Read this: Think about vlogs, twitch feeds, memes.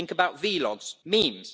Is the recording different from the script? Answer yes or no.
yes